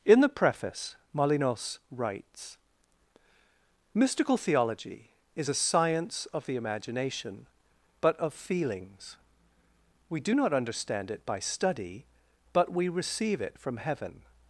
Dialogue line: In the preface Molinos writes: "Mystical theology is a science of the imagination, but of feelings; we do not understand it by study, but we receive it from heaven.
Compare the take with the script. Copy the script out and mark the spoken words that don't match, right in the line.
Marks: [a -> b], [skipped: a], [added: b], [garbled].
In the preface Molinos writes: "Mystical theology is a science of the imagination, but of feelings; we do not understand it by study, but we receive it from heaven.